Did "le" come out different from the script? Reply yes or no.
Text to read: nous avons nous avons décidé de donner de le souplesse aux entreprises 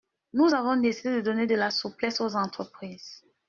yes